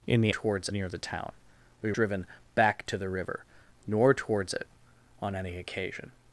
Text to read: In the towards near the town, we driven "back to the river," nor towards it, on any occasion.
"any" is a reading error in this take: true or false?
false